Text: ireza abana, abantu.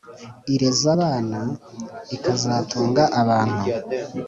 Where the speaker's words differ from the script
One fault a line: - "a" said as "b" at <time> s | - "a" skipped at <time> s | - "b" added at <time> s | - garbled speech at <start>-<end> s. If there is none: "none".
- "ikazatunga" added at 2.2 s